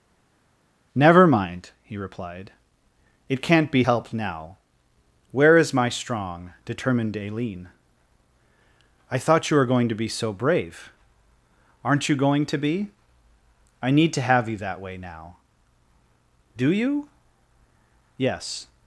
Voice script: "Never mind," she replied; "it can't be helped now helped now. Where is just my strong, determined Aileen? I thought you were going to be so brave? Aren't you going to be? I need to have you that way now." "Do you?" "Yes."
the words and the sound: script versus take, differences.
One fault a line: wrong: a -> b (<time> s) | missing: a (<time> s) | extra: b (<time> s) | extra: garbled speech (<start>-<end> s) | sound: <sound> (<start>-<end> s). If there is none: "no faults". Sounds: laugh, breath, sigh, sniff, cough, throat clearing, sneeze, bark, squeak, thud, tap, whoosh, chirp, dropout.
wrong: she -> he (1.8 s)
missing: helped now (4.6 s)
missing: just (5.7 s)